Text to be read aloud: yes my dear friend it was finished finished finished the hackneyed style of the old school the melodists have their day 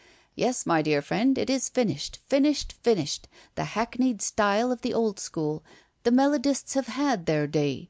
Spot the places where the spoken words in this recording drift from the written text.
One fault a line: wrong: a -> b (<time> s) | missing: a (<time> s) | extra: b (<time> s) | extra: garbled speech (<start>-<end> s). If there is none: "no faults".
wrong: was -> is (1.5 s)
extra: had (6.9 s)